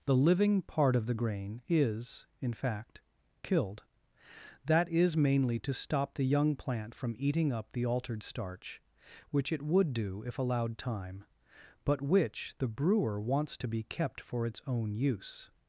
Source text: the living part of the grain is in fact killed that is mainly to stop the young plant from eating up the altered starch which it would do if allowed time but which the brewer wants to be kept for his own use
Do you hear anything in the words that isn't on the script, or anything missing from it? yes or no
yes